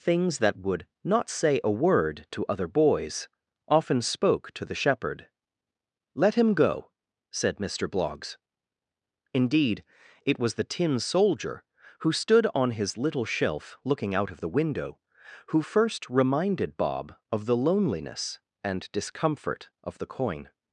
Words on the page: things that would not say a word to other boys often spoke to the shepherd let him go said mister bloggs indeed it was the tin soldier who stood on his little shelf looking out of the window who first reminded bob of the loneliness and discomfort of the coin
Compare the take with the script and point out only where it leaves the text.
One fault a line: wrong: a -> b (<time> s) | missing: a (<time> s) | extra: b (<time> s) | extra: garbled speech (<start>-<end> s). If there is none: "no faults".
no faults